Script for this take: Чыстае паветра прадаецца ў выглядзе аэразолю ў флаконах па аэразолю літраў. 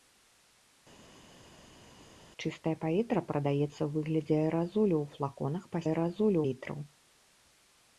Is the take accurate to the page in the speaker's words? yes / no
yes